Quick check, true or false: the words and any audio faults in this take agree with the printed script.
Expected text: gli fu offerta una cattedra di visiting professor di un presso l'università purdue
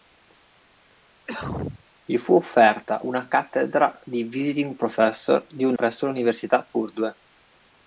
false